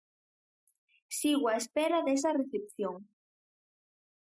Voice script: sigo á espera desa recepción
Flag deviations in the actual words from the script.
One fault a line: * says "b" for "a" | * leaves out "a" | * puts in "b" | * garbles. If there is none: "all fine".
all fine